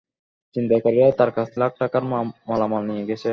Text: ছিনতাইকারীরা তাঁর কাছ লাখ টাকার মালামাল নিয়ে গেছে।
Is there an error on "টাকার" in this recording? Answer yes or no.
no